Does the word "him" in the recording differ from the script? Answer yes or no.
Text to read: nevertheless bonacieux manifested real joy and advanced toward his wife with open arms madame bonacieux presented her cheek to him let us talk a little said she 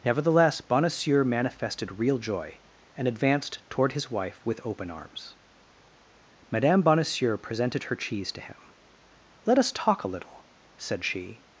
no